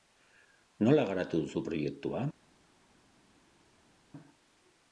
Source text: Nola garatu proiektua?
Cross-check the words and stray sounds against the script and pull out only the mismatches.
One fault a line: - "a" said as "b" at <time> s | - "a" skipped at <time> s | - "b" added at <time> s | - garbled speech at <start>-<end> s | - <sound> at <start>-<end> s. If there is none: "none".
- "duzu" added at 1.4 s